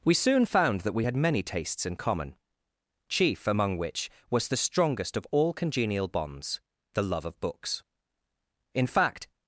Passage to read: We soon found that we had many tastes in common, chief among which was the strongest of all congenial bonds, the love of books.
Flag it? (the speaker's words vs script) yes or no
yes